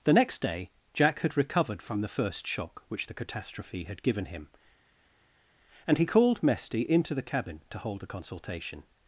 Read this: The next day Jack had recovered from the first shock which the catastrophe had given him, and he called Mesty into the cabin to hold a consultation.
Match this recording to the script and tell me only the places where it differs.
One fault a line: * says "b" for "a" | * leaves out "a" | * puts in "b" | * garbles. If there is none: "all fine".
all fine